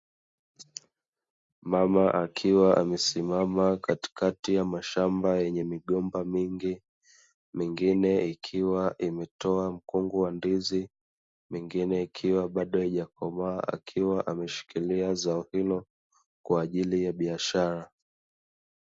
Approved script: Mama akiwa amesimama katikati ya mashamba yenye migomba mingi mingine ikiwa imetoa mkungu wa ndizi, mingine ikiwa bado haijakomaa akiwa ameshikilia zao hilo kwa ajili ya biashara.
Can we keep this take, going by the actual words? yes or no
yes